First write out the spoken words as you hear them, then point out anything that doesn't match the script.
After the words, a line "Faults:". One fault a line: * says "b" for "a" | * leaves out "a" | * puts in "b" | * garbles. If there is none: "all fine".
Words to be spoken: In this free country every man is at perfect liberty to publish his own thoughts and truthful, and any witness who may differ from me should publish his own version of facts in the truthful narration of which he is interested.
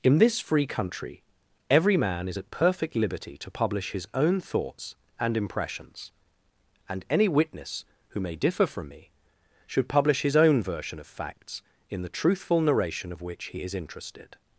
In this free country every man is at perfect liberty to publish his own thoughts and impressions, and any witness who may differ from me should publish his own version of facts in the truthful narration of which he is interested.
Faults:
* says "impressions" for "truthful"